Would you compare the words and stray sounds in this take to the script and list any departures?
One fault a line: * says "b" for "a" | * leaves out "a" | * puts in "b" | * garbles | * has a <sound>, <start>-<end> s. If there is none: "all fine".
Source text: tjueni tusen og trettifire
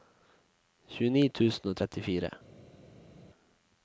all fine